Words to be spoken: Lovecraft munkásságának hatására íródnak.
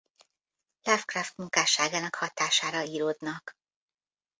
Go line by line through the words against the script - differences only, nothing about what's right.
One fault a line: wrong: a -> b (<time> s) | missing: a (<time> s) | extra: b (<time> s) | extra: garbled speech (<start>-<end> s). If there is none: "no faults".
no faults